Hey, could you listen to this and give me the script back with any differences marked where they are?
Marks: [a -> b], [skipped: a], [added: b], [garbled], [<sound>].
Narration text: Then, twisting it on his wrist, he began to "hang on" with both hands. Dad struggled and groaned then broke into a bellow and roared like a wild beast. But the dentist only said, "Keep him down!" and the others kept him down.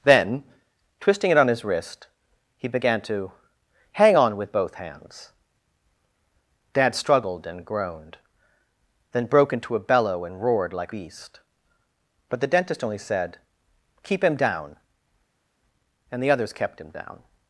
Then, twisting it on his wrist, he began to "hang on" with both hands. Dad struggled and groaned then broke into a bellow and roared like [skipped: a wild] beast. But the dentist only said, "Keep him down!" and the others kept him down.